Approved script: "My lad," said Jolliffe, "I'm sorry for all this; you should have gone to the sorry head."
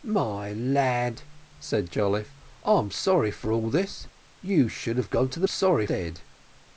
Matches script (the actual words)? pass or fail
pass